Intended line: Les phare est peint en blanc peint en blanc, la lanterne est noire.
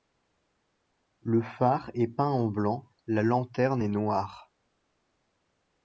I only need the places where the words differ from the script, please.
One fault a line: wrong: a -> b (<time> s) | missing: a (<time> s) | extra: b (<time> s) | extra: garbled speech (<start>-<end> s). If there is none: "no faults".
wrong: Les -> Le (1.2 s)
missing: peint en blanc (2.9 s)